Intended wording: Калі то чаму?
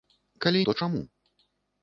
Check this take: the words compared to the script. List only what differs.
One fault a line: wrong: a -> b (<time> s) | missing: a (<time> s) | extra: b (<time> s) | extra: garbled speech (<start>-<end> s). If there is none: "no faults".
no faults